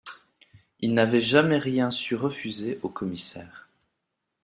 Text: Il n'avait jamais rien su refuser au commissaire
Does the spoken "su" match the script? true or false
true